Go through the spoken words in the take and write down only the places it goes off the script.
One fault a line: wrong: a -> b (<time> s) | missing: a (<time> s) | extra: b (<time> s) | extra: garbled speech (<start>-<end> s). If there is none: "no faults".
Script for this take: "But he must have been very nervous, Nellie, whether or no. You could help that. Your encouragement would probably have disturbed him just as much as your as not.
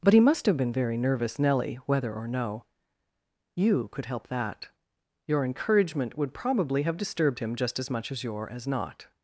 no faults